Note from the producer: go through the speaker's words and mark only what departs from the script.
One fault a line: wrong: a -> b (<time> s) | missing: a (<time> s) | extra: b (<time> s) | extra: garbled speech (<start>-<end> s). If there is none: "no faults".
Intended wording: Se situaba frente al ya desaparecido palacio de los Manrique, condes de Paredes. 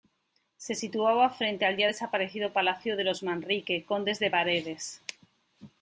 no faults